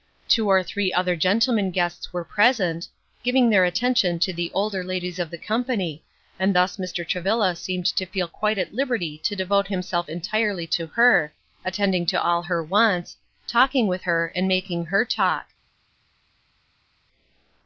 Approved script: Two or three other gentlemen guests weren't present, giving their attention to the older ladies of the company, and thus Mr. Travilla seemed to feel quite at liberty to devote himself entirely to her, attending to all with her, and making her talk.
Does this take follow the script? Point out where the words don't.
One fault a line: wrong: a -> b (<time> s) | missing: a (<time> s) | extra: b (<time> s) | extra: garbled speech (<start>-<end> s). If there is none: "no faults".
wrong: weren't -> were (2.1 s)
extra: her wants talking (12.4 s)